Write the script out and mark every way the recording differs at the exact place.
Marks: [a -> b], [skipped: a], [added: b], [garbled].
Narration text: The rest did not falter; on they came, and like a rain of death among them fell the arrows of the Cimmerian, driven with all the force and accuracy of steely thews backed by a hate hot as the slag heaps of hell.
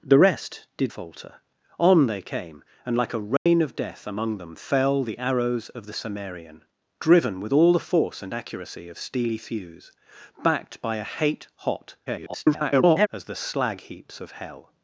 The rest did [skipped: not] falter; on they came, and like a rain of death among them fell the arrows of the Cimmerian, driven with all the force and accuracy of steely thews backed by a hate hot [garbled] as the slag heaps of hell.